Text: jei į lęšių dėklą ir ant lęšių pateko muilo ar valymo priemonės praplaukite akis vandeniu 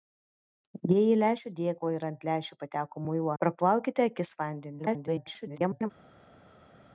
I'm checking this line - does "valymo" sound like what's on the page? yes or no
no